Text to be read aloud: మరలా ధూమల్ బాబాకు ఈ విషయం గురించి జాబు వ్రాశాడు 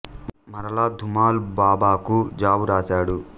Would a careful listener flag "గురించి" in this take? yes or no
yes